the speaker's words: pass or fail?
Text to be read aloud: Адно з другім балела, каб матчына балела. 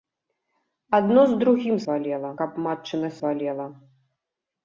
pass